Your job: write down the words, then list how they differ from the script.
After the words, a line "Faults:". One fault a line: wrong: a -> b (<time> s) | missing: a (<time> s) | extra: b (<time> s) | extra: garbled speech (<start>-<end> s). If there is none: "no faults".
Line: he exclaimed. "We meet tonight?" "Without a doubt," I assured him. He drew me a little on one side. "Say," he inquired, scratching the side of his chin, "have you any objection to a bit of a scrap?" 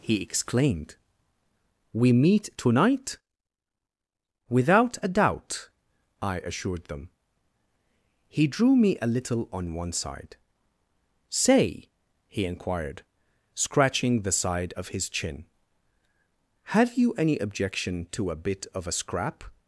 he exclaimed. "We meet tonight?" "Without a doubt," I assured them. He drew me a little on one side. "Say," he inquired, scratching the side of his chin, "have you any objection to a bit of a scrap?"
Faults:
wrong: him -> them (6.8 s)